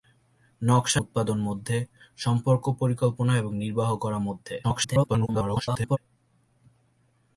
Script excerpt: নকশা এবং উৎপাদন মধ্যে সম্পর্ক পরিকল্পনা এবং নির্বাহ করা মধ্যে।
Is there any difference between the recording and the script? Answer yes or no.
yes